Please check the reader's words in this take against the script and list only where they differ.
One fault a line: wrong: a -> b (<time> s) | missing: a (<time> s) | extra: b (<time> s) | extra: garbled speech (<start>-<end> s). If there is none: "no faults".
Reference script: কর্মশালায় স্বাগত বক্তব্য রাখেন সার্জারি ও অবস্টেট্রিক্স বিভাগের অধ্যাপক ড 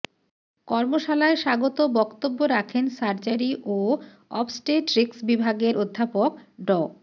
no faults